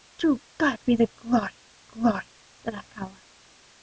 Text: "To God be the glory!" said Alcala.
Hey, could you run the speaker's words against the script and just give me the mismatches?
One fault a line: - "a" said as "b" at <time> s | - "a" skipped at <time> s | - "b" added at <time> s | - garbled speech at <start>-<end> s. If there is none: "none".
- "glory" added at 1.9 s